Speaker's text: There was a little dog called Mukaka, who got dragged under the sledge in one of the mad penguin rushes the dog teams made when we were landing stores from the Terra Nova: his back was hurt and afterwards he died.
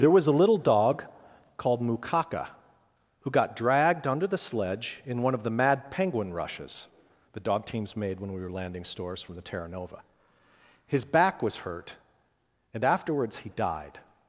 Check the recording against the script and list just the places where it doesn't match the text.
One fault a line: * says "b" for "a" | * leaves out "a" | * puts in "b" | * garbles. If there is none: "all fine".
all fine